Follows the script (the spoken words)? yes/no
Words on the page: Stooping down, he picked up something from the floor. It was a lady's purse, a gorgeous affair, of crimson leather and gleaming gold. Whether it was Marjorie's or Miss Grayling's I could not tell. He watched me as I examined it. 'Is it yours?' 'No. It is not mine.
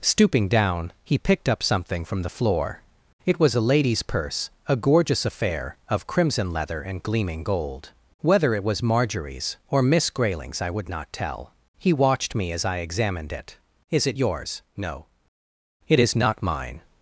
no